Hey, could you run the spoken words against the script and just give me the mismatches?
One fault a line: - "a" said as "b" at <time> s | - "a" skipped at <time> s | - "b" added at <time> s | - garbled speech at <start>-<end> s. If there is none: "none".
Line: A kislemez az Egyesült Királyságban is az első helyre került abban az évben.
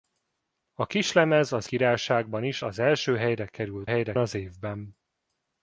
- "Egyesült" skipped at 1.7 s
- "abban" said as "helyre" at 3.9 s